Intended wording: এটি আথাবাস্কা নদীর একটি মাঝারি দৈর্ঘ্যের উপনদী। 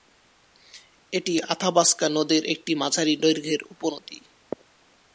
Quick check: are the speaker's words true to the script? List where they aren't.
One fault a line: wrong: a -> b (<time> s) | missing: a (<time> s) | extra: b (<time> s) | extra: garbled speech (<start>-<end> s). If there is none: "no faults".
no faults